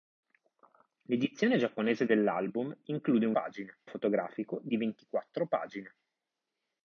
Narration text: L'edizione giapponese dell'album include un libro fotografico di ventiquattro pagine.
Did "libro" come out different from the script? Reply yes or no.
yes